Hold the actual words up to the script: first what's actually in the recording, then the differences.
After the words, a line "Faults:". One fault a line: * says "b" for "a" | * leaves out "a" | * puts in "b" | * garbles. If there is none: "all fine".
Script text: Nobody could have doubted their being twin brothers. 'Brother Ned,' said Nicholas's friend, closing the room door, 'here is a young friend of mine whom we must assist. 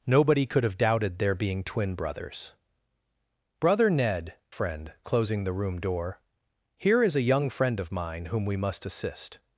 Nobody could have doubted their being twin brothers. 'Brother Ned,' friend, closing the room door, 'here is a young friend of mine whom we must assist.
Faults:
* leaves out "said Nicholas's"